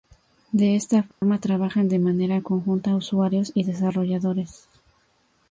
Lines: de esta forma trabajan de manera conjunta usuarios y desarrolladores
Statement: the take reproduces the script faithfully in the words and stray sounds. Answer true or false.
false